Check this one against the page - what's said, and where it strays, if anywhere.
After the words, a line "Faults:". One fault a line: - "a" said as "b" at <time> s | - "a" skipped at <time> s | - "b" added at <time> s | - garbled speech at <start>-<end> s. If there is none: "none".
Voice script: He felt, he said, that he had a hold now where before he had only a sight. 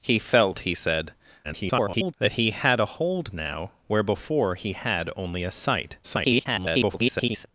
He felt, he said, [garbled] that he had a hold now where before he had only a sight. [garbled]
Faults:
- garbled speech at 1.4-2.1 s
- garbled speech at 6.0-7.5 s